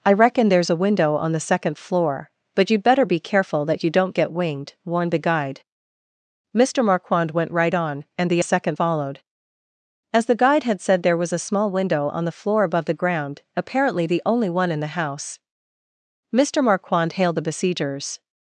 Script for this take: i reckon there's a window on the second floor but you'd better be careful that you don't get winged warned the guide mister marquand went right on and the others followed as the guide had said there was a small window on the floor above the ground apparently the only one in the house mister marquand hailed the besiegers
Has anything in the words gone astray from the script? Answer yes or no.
yes